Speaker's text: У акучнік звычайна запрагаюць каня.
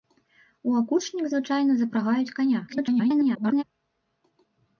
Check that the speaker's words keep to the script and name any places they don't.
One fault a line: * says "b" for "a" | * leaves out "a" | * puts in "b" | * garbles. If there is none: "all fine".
* garbles